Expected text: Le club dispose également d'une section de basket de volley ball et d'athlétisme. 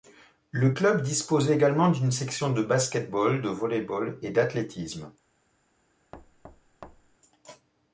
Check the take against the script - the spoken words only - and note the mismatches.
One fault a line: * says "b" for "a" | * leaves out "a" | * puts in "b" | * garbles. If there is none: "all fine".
* puts in "ball"